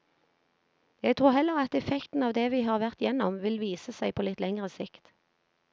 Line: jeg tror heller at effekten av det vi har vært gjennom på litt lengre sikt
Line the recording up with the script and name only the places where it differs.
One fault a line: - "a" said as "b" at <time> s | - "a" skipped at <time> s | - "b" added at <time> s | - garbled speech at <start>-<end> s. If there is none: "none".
- "vil vise seg" added at 3.4 s